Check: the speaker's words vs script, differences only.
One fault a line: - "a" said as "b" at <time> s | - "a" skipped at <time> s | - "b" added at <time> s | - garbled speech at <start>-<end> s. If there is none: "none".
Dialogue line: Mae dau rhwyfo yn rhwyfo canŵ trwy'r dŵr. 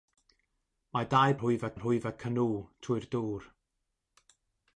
none